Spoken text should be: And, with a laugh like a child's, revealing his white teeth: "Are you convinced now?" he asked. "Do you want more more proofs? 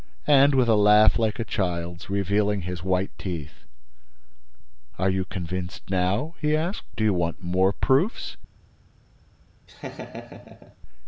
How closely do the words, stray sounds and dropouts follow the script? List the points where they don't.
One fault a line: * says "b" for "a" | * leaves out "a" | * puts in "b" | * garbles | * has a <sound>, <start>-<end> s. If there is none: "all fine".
* leaves out "more"
* has a laugh, 9.7-10.8 s